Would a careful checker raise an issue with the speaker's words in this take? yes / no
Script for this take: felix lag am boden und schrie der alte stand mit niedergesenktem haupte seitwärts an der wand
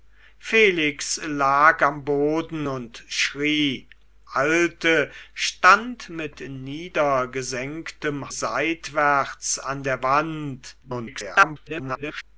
yes